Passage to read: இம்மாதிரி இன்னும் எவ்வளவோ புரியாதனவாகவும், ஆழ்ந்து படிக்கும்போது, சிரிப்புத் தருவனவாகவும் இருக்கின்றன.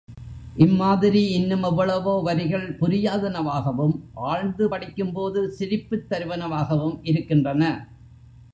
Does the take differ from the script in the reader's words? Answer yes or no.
yes